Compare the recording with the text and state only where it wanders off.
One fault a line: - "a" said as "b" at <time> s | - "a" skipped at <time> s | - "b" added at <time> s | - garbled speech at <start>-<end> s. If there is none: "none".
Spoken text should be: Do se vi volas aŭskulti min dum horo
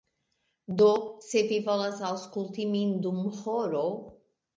none